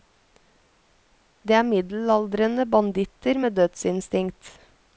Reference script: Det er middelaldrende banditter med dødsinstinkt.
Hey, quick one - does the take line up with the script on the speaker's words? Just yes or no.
yes